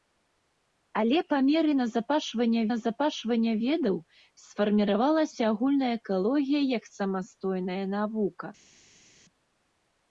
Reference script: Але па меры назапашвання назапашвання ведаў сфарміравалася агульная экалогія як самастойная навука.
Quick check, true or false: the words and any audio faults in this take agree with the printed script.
true